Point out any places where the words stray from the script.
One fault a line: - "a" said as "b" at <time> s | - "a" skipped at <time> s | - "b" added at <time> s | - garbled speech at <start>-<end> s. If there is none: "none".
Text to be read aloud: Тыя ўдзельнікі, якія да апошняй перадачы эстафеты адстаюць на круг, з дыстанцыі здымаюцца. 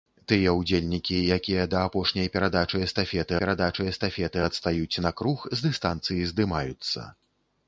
- "перадачы эстафеты" added at 3.4 s